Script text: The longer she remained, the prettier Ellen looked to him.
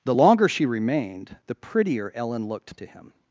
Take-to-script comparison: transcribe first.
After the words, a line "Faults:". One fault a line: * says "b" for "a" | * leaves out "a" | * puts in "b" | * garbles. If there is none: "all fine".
The longer she remained, the prettier Ellen looked to him.
Faults:
all fine